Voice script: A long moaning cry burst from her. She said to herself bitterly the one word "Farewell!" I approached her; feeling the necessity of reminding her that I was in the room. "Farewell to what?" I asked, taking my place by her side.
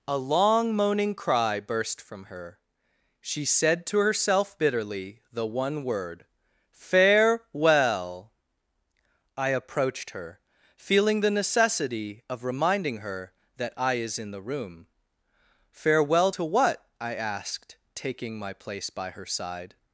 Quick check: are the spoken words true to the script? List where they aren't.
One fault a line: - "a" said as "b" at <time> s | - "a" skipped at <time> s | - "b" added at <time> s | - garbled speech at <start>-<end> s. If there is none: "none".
- "was" said as "is" at 13.9 s